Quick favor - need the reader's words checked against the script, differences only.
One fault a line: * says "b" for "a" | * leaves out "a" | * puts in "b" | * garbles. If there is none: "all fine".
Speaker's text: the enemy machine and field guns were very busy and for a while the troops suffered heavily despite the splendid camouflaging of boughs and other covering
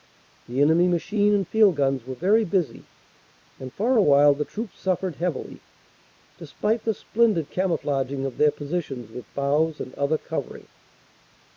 * puts in "their positions with"